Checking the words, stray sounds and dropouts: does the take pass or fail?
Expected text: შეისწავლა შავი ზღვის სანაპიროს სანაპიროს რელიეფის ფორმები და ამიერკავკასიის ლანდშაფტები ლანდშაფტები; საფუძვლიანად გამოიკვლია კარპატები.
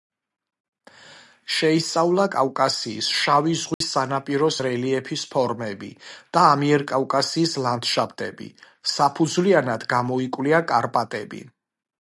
fail